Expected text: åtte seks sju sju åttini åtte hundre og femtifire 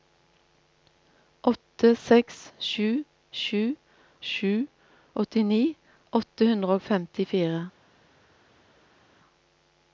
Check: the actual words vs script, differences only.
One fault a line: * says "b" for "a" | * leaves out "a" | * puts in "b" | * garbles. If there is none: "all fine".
* puts in "sju"